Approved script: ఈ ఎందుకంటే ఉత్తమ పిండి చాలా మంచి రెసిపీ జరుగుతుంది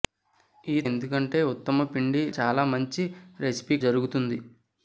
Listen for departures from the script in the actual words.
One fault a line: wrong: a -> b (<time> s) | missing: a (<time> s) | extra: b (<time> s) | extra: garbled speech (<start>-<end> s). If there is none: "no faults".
no faults